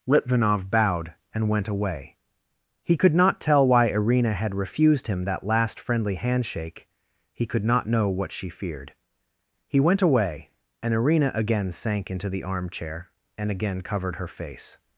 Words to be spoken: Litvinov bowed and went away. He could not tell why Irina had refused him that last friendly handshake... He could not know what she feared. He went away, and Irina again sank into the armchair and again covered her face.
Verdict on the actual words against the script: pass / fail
pass